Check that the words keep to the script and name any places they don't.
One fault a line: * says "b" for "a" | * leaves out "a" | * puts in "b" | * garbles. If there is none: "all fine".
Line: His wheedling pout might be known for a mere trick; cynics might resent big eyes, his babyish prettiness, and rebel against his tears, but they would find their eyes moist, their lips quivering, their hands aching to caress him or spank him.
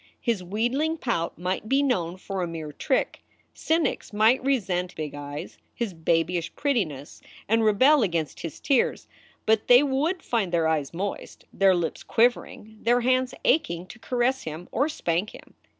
all fine